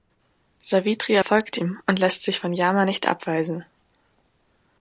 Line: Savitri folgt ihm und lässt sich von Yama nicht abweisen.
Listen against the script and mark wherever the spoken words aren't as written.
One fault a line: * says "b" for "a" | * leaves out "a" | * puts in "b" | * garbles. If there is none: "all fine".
all fine